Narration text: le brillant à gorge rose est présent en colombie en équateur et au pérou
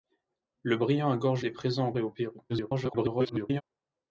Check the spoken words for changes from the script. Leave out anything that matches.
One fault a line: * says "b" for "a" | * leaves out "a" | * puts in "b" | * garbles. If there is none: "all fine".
* leaves out "rose"
* leaves out "colombie en équateur"
* garbles